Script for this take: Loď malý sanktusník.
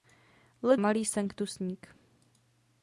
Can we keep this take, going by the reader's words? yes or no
yes